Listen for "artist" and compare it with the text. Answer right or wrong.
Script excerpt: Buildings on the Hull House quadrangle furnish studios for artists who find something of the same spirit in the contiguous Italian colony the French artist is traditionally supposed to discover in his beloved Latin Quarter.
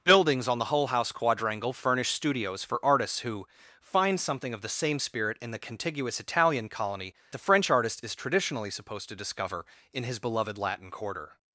right